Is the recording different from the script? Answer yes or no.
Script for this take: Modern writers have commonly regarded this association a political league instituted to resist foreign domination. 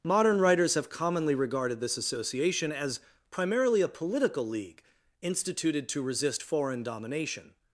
yes